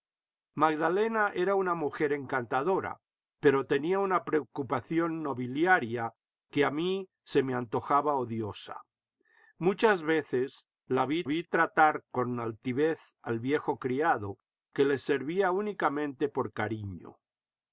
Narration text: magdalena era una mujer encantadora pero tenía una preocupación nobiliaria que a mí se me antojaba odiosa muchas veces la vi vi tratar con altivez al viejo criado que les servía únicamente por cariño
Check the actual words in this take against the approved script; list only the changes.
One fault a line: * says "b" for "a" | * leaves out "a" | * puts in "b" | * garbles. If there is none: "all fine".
all fine